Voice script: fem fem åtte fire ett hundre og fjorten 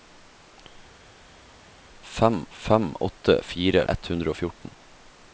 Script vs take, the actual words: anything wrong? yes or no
no